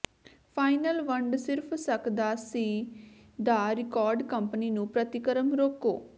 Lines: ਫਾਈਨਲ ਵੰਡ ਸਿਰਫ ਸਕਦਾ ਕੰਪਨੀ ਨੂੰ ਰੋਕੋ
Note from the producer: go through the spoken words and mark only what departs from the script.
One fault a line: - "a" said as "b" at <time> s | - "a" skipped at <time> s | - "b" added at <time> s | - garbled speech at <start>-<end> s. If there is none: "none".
- "ਸੀ ਦਾ ਰਿਕਾਰਡ" added at 2.4 s
- "ਪ੍ਰਤੀਕਰਮ" added at 4.9 s